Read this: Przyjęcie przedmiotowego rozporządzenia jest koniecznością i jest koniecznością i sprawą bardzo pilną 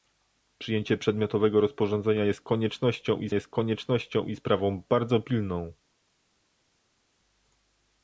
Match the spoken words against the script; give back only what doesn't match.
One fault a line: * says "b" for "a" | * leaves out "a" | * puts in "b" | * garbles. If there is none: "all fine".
all fine